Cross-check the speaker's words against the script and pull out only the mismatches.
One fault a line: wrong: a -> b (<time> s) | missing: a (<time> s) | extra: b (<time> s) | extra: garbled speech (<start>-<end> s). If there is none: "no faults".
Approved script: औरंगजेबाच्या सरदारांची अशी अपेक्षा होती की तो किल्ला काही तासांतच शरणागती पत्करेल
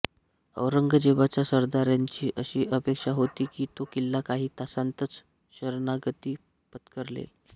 no faults